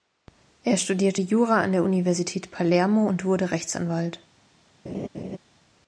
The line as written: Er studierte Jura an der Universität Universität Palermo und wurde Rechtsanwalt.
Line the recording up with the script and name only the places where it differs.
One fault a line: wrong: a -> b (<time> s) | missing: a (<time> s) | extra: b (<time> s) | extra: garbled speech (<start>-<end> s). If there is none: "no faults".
missing: Universität (2.5 s)